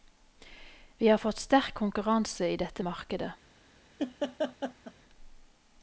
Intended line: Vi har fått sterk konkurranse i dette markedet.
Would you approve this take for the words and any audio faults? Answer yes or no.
no